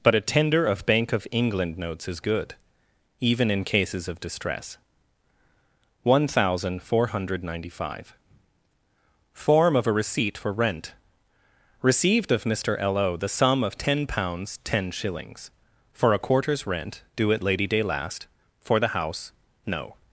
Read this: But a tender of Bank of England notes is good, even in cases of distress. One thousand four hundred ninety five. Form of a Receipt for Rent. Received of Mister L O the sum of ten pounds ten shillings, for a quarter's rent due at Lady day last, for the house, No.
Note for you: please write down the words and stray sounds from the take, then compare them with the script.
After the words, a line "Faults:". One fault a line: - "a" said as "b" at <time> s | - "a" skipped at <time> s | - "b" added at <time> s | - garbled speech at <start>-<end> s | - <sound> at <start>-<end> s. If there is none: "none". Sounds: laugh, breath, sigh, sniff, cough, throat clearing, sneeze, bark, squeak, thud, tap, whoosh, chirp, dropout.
But a tender of Bank of England notes is good, even in cases of distress. One thousand four hundred ninety five. Form of a Receipt for Rent. Received of Mister L O the sum of ten pounds ten shillings, for a quarter's rent due at Lady day last, for the house, No.
Faults:
none